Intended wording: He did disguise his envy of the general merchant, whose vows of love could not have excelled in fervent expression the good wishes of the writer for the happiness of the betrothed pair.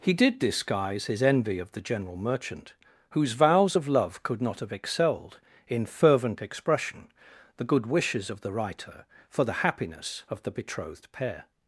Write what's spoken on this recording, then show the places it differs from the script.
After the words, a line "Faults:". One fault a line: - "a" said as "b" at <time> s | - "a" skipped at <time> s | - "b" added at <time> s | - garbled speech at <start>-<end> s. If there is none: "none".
He did disguise his envy of the general merchant, whose vows of love could not have excelled in fervent expression the good wishes of the writer for the happiness of the betrothed pair.
Faults:
none